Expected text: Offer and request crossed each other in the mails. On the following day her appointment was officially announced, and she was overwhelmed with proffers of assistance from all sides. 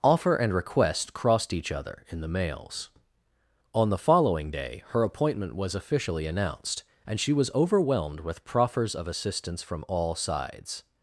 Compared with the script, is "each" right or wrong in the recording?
right